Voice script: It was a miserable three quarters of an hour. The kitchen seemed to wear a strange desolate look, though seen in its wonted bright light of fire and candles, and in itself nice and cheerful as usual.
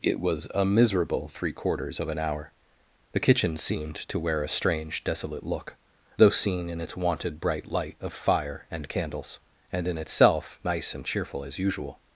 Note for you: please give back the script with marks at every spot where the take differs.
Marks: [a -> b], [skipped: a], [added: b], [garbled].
It was a miserable three quarters of an hour. The kitchen seemed to wear a strange desolate look, though seen in its wonted bright light of fire and candles, and in itself nice and cheerful as usual.